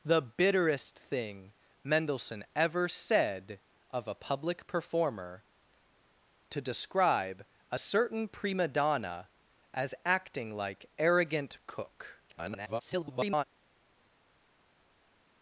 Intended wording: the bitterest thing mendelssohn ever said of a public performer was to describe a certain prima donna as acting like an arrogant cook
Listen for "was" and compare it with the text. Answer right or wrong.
wrong